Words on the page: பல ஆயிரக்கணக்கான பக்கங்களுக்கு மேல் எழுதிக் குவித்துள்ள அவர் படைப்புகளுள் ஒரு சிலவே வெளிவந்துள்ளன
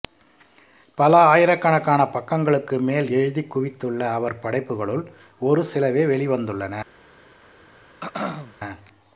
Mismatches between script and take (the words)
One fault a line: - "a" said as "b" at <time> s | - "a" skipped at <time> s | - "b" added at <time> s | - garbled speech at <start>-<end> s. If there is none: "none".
none